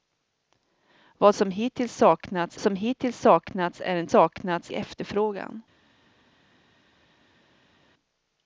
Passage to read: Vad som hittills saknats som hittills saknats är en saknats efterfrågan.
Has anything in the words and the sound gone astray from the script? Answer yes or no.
no